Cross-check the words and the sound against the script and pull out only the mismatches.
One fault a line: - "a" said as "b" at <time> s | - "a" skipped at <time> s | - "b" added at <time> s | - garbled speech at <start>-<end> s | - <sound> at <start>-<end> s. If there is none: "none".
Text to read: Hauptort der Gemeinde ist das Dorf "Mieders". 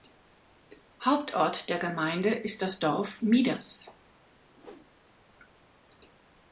- whoosh at 4.6-4.9 s